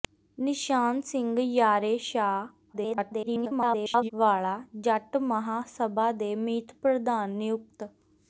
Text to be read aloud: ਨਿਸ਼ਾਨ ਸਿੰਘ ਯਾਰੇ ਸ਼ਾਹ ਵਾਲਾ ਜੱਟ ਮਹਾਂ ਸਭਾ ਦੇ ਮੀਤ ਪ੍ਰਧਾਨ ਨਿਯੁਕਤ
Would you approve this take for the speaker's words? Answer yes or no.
no